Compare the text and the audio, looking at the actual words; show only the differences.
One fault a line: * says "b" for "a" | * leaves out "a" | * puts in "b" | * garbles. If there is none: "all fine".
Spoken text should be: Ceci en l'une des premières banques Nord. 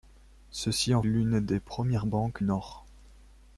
all fine